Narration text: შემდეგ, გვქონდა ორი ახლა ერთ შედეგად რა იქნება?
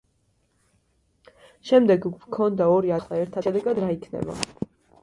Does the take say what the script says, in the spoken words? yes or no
yes